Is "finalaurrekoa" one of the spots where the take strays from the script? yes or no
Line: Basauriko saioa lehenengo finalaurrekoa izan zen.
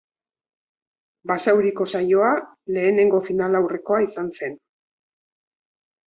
no